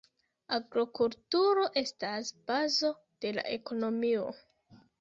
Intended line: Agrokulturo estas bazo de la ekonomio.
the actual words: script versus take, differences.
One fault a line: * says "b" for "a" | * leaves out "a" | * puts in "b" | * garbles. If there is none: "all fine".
all fine